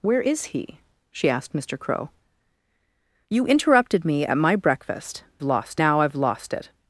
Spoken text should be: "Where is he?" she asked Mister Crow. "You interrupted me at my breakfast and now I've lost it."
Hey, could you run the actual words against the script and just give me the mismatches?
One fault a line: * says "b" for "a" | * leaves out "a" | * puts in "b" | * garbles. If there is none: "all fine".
* says "lost" for "and"